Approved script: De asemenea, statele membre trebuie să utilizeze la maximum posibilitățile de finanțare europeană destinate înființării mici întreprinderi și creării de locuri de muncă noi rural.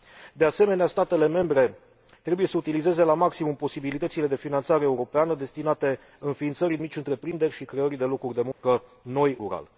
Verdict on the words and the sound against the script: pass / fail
fail